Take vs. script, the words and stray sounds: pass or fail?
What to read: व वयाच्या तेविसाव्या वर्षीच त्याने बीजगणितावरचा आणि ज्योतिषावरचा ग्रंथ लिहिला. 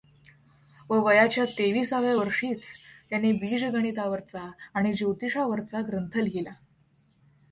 pass